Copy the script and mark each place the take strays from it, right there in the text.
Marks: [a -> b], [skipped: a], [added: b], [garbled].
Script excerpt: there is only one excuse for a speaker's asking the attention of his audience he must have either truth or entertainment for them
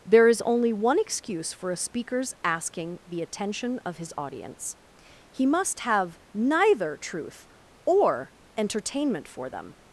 there is only one excuse for a speaker's asking the attention of his audience he must have [either -> neither] truth or entertainment for them